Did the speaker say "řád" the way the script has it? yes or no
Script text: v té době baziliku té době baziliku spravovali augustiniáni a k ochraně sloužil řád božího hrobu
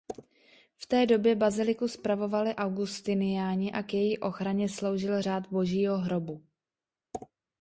yes